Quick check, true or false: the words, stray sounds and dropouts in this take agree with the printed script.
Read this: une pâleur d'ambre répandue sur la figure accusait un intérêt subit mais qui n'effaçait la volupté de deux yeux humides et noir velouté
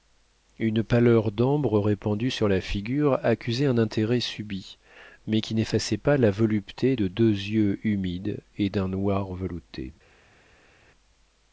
false